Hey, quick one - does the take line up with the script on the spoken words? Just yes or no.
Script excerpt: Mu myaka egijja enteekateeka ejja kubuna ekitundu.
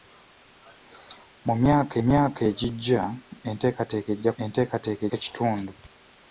no